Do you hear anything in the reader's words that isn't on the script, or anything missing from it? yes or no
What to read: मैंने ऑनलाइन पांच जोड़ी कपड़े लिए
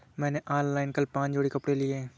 yes